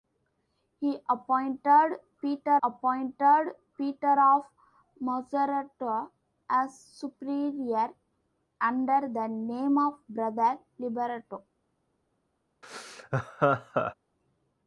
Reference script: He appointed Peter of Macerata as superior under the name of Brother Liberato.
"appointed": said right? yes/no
yes